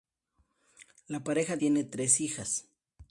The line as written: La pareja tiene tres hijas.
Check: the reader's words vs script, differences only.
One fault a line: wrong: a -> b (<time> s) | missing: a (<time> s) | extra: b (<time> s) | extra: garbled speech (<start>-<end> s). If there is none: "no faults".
no faults